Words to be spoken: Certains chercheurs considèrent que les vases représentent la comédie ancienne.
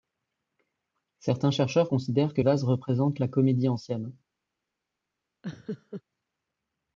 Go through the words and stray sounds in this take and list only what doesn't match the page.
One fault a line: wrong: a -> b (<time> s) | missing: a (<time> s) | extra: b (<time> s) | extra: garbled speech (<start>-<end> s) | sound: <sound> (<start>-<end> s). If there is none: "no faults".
missing: les (2.4 s)
sound: laugh (5.4-6.0 s)